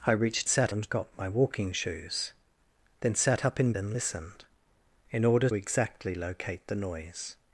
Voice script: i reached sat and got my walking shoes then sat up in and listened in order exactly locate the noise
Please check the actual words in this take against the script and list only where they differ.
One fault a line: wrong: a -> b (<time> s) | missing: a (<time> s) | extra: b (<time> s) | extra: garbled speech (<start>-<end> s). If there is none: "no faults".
no faults